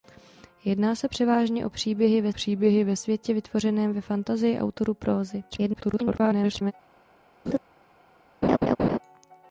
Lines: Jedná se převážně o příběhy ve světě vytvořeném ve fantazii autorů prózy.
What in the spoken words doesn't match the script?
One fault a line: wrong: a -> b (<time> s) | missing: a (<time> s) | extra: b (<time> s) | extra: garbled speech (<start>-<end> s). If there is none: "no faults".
extra: příběhy ve (2.3 s)
extra: garbled speech (5.5-6.7 s)